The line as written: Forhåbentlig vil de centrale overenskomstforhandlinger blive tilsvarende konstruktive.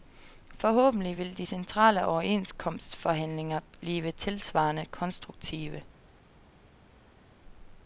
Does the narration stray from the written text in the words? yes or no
no